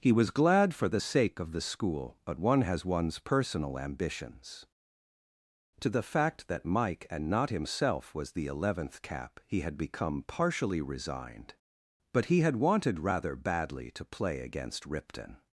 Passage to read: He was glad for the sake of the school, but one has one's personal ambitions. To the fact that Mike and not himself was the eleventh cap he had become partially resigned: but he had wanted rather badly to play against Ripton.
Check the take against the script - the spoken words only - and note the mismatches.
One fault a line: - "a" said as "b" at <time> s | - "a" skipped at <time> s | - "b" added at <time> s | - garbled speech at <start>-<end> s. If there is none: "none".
none